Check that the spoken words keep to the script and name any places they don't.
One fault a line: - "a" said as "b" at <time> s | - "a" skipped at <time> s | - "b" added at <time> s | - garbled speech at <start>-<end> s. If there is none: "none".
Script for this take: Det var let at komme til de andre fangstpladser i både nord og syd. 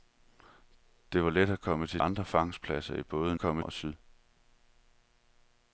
- "de" skipped at 2.0 s
- "nord" said as "komme" at 3.4 s